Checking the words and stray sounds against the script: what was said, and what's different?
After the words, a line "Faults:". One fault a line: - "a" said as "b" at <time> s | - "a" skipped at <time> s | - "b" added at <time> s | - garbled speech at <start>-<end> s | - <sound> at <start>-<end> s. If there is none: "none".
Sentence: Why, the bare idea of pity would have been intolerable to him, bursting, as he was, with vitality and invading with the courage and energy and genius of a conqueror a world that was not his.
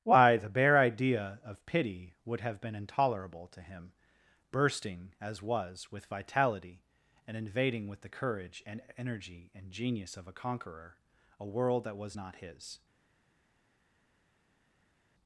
Why, the bare idea of pity would have been intolerable to him, bursting, as was, with vitality and invading with the courage and energy and genius of a conqueror a world that was not his.
Faults:
- "he" skipped at 5.4 s